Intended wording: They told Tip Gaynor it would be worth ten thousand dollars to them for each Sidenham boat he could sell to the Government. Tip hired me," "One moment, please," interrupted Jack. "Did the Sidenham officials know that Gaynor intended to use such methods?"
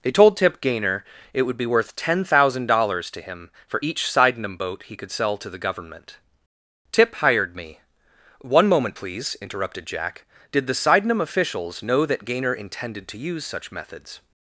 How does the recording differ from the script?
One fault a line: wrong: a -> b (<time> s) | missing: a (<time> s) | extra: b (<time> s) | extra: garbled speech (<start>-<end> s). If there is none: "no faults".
wrong: them -> him (3.2 s)